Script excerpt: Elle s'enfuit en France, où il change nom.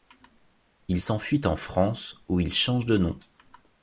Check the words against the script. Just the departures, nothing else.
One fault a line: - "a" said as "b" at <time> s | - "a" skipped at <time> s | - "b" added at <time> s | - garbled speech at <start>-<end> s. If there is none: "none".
- "Elle" said as "Il" at 0.9 s
- "de" added at 2.9 s